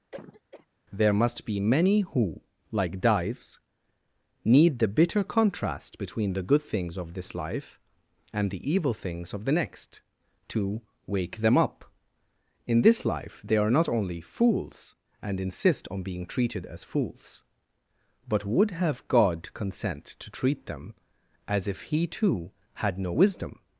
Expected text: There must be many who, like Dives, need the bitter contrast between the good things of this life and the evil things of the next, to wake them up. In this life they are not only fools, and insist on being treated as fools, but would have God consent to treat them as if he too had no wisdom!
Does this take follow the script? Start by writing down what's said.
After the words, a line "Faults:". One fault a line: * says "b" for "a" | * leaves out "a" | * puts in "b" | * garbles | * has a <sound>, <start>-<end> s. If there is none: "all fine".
There must be many who, like Dives, need the bitter contrast between the good things of this life and the evil things of the next, to wake them up. In this life they are not only fools, and insist on being treated as fools, but would have God consent to treat them as if he too had no wisdom!
Faults:
* has a cough, 0.1-0.7 s